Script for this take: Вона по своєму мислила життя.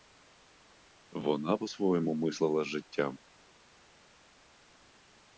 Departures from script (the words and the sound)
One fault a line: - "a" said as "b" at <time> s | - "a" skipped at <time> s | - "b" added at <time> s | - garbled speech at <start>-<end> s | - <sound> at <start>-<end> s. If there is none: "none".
none